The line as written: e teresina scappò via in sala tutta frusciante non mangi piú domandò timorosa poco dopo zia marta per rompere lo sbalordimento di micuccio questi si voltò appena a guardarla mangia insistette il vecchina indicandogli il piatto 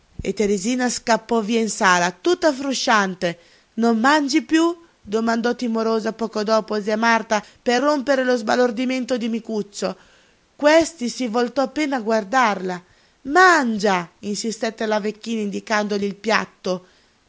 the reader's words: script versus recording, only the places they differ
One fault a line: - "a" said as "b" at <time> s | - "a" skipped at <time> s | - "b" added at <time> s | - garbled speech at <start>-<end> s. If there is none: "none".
- "il" said as "la" at 14.9 s